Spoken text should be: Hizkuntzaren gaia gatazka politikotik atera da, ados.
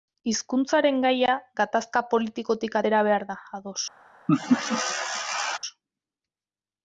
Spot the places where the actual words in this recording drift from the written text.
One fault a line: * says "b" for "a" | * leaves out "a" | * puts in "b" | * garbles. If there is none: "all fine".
* puts in "behar"